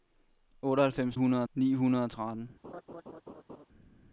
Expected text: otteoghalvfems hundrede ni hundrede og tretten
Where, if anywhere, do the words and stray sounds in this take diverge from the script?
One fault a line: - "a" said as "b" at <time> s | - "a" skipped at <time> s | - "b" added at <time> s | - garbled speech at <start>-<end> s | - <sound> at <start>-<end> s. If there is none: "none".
- laugh at 2.6-3.7 s